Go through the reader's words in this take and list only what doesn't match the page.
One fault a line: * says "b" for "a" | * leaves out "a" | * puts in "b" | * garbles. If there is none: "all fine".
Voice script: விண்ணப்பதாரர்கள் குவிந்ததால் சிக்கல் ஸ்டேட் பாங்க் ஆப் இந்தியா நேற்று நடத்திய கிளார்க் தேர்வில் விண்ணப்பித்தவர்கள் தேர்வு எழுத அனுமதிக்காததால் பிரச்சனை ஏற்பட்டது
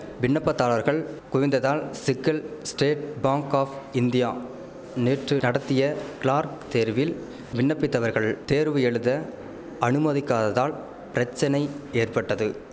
all fine